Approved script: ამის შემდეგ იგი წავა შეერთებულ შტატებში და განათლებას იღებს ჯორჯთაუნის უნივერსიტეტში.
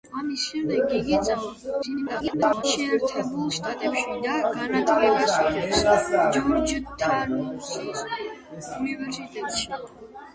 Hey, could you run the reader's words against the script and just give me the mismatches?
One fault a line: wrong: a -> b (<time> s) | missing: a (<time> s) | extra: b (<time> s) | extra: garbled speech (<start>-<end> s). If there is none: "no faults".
extra: garbled speech (1.8-2.6 s)